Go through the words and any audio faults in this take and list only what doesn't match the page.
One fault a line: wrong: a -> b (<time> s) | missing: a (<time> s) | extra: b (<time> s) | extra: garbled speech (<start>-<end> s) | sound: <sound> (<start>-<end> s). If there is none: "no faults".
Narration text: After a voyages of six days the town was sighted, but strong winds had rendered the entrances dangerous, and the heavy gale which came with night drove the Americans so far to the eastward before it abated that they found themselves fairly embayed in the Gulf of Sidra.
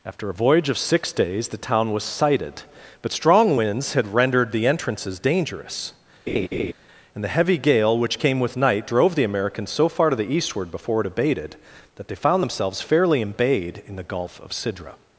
wrong: voyages -> voyage (0.3 s)
sound: laugh (6.3-6.7 s)